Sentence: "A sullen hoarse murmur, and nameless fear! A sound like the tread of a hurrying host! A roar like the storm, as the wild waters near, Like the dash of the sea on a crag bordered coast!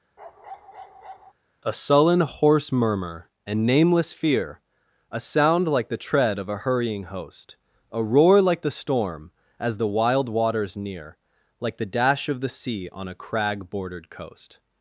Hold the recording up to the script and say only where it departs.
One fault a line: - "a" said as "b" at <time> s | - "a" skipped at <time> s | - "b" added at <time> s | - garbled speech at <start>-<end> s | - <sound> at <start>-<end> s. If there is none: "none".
- bark at 0.2-1.3 s